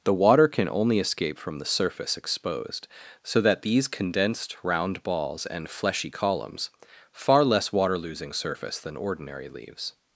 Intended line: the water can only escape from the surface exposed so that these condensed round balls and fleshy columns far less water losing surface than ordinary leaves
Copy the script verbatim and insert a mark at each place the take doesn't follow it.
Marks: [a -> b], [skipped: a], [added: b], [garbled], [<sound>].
the water can only escape from the surface exposed so that these condensed round balls and fleshy columns far less water losing surface than ordinary leaves